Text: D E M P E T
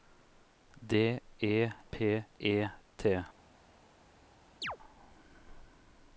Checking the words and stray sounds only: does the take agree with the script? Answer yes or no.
no